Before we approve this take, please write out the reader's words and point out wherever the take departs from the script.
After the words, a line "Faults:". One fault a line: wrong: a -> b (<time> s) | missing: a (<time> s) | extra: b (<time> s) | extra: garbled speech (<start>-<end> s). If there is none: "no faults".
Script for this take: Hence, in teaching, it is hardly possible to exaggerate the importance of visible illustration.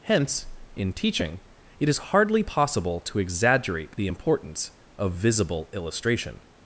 Hence, in teaching, it is hardly possible to exaggerate the importance of visible illustration.
Faults:
no faults